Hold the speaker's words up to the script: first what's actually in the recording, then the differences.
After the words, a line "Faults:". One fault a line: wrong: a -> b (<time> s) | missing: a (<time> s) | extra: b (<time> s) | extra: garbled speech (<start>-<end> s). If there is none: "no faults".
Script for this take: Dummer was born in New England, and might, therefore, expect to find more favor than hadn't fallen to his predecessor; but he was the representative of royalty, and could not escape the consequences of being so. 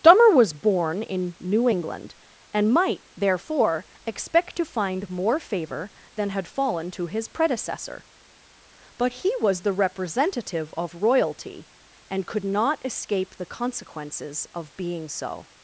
Dummer was born in New England, and might, therefore, expect to find more favor than had fallen to his predecessor; but he was the representative of royalty, and could not escape the consequences of being so.
Faults:
wrong: hadn't -> had (6.3 s)